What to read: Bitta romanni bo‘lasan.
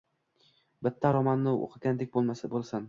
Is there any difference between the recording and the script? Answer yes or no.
yes